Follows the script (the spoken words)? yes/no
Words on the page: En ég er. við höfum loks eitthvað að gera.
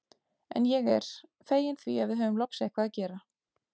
no